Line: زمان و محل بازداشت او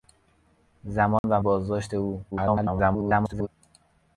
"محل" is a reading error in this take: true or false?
true